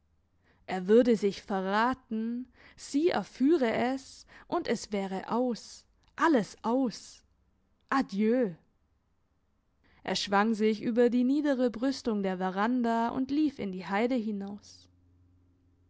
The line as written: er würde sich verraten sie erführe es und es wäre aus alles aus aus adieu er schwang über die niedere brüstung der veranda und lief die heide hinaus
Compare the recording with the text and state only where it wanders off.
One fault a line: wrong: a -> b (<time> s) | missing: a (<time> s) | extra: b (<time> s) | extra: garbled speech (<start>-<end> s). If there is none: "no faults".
missing: aus (7.2 s)
extra: sich (10.6 s)
extra: in (13.6 s)